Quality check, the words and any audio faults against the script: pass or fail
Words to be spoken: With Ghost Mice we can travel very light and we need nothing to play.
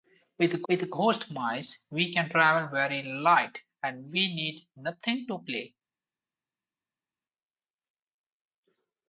fail